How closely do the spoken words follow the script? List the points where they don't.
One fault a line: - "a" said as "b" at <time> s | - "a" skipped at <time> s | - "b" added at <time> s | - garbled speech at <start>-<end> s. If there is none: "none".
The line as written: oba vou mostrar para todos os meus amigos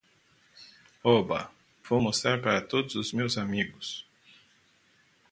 none